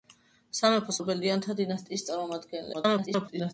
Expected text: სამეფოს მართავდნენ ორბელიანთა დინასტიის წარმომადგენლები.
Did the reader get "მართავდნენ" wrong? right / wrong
wrong